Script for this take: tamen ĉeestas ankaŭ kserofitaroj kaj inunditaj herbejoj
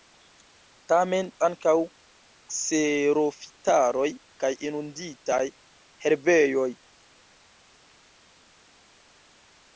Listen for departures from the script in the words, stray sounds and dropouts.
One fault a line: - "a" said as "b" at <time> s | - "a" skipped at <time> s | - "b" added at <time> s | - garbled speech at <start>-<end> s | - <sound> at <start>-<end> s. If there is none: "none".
- "ĉeestas" skipped at 1.3 s